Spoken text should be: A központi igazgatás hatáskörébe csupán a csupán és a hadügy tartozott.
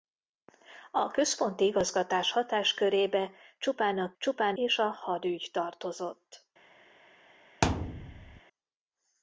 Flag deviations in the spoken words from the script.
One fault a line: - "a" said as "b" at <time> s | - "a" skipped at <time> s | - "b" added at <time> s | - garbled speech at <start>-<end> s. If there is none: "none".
none